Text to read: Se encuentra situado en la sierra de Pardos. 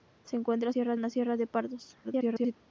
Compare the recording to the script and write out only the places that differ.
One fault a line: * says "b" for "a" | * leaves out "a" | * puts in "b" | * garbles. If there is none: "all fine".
* says "sierra" for "situado"
* garbles